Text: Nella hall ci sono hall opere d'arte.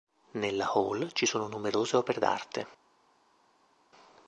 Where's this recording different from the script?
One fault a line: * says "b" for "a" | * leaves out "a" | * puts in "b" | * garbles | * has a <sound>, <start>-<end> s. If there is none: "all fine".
* says "numerose" for "hall"